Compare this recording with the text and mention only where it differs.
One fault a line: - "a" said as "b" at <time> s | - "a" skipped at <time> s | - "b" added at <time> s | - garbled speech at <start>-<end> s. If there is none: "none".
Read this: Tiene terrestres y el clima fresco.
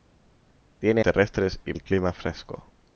none